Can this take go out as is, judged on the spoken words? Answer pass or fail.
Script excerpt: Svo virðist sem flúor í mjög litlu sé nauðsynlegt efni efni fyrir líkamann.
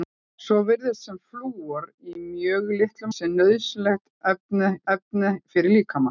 pass